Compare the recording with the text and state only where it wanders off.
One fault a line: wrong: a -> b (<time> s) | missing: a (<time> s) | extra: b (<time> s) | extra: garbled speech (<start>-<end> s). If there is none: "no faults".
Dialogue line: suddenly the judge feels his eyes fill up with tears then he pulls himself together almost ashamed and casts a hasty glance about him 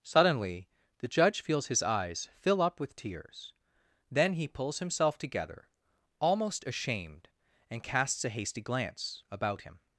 no faults